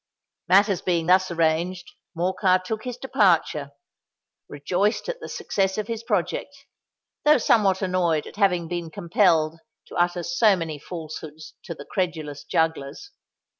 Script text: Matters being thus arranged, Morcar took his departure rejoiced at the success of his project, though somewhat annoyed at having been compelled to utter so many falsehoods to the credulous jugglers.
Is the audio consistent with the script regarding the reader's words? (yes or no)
yes